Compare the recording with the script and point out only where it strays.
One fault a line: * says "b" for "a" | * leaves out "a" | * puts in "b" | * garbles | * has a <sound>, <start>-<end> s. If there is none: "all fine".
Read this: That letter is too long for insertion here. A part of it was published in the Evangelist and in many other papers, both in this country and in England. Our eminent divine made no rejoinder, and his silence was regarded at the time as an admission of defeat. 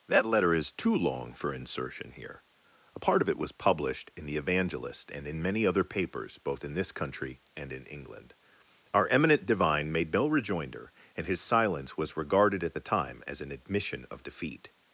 all fine